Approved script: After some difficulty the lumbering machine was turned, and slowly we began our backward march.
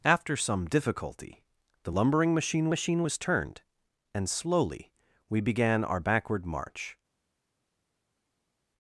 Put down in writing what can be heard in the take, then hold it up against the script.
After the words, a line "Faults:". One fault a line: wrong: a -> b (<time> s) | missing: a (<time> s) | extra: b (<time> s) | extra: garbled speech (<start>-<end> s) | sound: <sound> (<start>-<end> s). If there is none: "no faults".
After some difficulty the lumbering machine machine was turned, and slowly we began our backward march.
Faults:
extra: machine (2.7 s)